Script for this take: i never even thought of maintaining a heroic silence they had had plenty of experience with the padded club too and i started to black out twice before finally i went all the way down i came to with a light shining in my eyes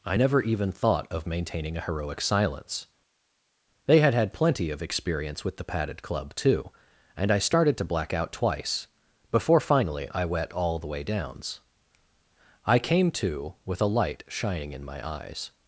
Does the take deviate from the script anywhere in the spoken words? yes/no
yes